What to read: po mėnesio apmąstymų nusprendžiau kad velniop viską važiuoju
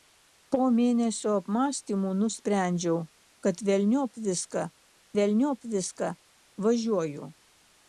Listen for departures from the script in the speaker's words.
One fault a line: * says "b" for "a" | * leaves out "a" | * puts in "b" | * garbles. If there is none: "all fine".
* puts in "velniop viską"